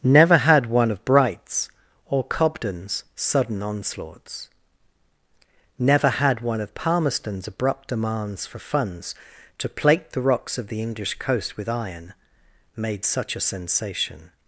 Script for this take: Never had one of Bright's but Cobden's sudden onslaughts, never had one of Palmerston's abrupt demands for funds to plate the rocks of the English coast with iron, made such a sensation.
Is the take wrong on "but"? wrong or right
wrong